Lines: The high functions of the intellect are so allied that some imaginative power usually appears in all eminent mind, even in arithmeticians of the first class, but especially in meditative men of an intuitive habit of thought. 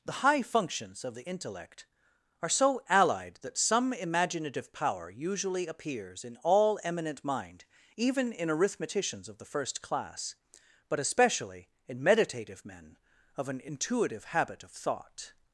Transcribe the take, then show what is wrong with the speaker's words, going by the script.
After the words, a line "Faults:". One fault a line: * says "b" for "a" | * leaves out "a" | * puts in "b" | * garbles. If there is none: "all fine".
The high functions of the intellect are so allied that some imaginative power usually appears in all eminent mind, even in arithmeticians of the first class, but especially in meditative men of an intuitive habit of thought.
Faults:
all fine